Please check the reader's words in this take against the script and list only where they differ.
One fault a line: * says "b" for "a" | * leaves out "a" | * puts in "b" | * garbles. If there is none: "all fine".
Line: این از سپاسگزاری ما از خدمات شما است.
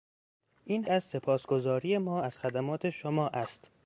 all fine